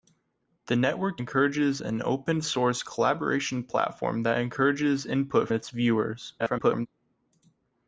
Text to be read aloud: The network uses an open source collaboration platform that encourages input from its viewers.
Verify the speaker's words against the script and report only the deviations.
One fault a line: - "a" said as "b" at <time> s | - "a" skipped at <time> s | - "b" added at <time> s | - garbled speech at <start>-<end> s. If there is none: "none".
- "uses" said as "encourages" at 1.2 s
- "from" skipped at 5.5 s
- garbled speech at 6.4-6.9 s